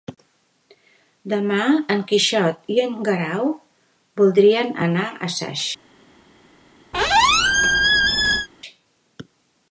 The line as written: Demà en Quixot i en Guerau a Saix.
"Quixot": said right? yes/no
yes